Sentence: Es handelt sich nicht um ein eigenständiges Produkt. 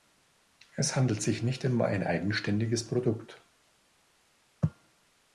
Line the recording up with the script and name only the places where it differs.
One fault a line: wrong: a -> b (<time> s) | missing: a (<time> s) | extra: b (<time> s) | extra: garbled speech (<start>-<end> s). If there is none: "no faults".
no faults